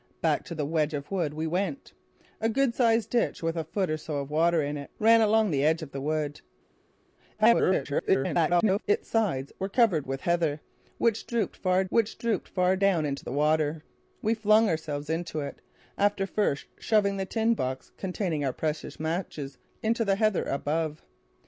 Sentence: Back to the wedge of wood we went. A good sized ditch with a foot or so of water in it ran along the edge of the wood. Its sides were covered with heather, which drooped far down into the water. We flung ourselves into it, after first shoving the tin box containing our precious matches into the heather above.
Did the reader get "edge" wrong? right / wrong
right